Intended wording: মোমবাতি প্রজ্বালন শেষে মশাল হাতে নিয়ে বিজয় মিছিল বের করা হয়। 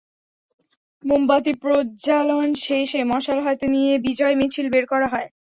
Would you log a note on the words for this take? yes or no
no